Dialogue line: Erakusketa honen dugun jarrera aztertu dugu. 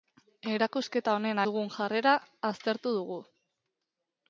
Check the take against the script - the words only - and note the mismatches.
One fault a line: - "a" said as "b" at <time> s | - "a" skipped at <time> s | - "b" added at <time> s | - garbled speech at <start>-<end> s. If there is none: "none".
none